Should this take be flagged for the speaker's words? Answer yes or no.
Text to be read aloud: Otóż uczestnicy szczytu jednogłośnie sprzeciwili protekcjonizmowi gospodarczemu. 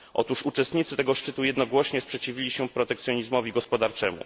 yes